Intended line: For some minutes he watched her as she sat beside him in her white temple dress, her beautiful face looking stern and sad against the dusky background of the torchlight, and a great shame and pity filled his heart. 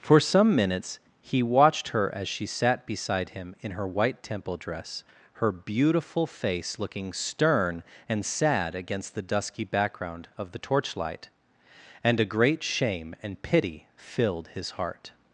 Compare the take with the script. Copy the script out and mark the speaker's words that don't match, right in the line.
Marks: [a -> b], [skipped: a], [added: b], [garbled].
For some minutes he watched her as she sat beside him in her white temple dress, her beautiful face looking stern and sad against the dusky background of the torchlight, and a great shame and pity filled his heart.